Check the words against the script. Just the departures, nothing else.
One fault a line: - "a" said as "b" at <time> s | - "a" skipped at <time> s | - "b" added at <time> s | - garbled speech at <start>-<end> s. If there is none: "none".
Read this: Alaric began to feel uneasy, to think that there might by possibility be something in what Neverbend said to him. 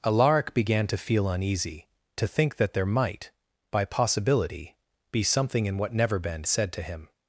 none